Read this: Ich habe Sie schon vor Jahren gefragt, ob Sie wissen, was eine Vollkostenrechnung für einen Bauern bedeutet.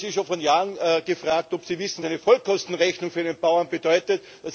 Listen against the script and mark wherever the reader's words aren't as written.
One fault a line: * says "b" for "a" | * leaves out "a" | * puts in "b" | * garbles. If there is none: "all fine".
* leaves out "was"